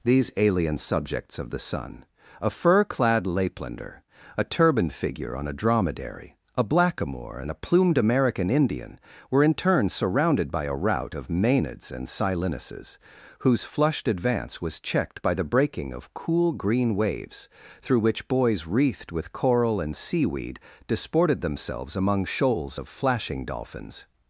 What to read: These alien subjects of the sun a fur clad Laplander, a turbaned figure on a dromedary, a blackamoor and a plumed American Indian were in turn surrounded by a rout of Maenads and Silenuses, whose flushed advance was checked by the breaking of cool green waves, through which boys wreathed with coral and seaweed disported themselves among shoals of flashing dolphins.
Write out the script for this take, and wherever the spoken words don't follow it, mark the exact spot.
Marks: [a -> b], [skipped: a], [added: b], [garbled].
These alien subjects of the sun a fur clad Laplander, a turbaned figure on a dromedary, a blackamoor and a plumed American Indian were in turn surrounded by a rout of Maenads and Silenuses, whose flushed advance was checked by the breaking of cool green waves, through which boys wreathed with coral and seaweed disported themselves among shoals of flashing dolphins.